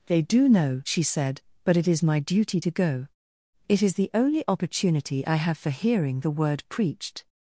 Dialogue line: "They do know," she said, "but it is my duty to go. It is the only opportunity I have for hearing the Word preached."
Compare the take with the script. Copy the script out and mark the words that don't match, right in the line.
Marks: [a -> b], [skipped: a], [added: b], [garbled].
"They do know," she said, "but it is my duty to go. It is the only opportunity I have for hearing the Word preached."